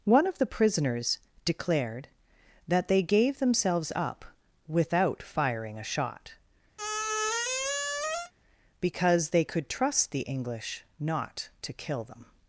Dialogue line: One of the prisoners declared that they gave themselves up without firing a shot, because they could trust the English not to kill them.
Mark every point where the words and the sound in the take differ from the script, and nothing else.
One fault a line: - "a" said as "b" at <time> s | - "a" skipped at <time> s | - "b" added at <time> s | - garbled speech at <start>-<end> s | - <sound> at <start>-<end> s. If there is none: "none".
- squeak at 6.8-8.3 s